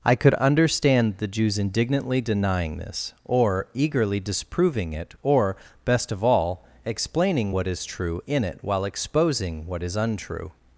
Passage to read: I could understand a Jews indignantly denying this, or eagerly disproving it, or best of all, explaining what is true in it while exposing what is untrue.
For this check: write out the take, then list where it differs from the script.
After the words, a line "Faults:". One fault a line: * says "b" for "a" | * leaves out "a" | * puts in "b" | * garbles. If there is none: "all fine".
I could understand the Jews indignantly denying this, or eagerly disproving it, or best of all, explaining what is true in it while exposing what is untrue.
Faults:
* says "the" for "a"